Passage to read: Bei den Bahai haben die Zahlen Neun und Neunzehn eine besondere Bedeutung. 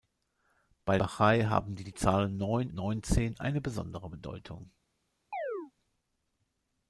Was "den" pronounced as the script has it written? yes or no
no